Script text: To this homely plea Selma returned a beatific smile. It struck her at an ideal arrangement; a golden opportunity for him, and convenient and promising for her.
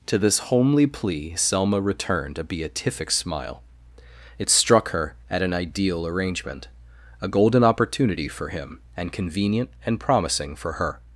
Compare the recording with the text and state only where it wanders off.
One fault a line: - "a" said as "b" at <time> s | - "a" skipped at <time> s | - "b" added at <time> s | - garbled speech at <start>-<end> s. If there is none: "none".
none